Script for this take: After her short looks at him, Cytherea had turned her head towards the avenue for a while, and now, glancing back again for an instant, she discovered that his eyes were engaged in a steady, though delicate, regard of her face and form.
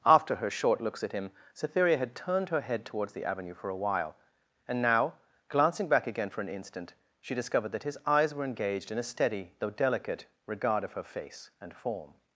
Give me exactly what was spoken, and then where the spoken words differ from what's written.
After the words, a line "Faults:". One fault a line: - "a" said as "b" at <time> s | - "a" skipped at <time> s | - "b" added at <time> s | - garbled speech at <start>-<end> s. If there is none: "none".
After her short looks at him, Cytherea had turned her head towards the avenue for a while, and now, glancing back again for an instant, she discovered that his eyes were engaged in a steady, though delicate, regard of her face and form.
Faults:
none